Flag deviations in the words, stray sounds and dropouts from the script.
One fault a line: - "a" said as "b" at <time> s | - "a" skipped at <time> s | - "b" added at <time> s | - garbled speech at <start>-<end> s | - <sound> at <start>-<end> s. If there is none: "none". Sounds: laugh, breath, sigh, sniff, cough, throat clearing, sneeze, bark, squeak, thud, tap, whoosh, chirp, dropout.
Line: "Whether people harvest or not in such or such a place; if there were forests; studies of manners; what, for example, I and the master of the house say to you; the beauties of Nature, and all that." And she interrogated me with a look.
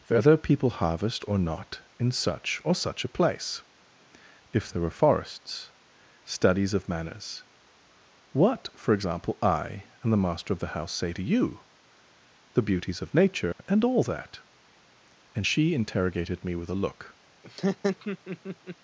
- dropout at 13.5-13.6 s
- laugh at 17.4-18.8 s